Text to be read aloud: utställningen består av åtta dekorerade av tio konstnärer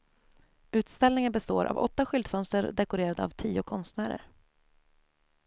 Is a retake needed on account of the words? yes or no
yes